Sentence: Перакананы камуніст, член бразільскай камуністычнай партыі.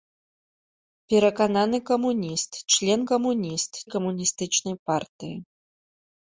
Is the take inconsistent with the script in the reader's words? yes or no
yes